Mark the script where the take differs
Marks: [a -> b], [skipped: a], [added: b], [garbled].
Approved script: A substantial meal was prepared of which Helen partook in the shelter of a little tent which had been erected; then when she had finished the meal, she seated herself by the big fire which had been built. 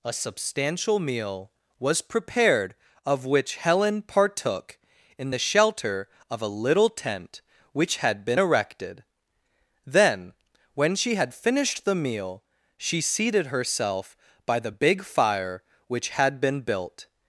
A substantial meal was prepared of which Helen partook in the shelter of a little tent which had been erected; then when she had finished the meal, she seated herself by the big fire which had been built.